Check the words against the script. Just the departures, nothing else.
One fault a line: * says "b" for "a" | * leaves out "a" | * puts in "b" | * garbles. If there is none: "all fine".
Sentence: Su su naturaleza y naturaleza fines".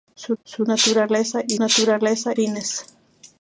all fine